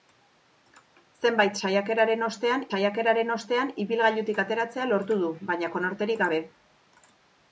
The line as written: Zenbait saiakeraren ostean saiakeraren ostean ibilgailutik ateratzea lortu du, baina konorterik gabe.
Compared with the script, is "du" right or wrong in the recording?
right